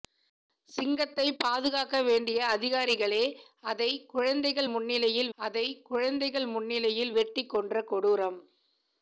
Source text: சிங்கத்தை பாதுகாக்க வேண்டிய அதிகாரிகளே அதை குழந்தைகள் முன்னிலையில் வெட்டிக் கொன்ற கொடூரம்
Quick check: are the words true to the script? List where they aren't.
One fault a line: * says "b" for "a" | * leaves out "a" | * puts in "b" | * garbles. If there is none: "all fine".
* puts in "அதை குழந்தைகள் முன்னிலையில்"